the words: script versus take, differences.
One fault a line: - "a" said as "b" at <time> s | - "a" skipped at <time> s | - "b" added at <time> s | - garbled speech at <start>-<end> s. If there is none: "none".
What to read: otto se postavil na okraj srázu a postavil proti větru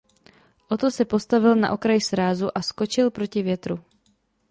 - "postavil" said as "skočil" at 2.6 s